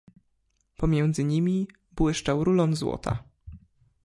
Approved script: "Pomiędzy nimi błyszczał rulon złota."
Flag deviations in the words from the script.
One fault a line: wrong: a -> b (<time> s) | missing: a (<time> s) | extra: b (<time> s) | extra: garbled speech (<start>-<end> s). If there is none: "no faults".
no faults